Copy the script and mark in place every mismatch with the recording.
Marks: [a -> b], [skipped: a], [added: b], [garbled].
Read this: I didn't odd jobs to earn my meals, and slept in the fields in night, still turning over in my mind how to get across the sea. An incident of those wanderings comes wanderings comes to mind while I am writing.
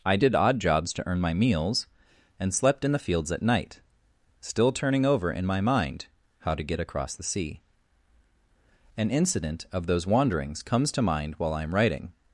I [didn't -> did] odd jobs to earn my meals, and slept in the fields [in -> at] night, still turning over in my mind how to get across the sea. An incident of those wanderings comes [skipped: wanderings comes] to mind while I am writing.